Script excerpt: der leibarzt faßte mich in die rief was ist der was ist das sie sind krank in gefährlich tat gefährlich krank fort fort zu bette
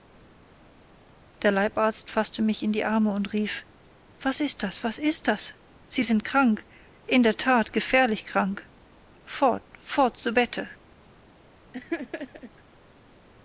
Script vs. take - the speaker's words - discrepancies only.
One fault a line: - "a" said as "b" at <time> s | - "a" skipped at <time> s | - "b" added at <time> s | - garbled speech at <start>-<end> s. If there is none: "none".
- "arme und" added at 2.8 s
- "der" said as "das" at 4.6 s
- "gefährlich" said as "der" at 7.2 s